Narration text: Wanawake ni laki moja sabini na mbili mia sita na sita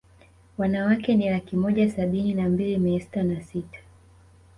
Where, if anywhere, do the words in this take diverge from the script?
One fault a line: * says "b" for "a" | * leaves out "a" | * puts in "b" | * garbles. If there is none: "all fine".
all fine